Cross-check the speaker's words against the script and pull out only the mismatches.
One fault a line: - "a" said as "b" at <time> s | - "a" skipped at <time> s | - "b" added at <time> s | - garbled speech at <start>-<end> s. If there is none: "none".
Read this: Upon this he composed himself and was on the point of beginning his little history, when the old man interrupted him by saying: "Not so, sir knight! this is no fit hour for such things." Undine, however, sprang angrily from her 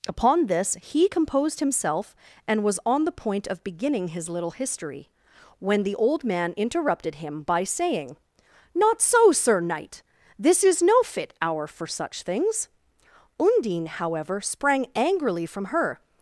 none